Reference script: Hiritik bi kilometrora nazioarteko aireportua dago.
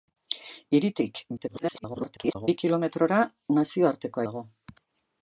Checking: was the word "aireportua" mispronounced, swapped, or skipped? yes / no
yes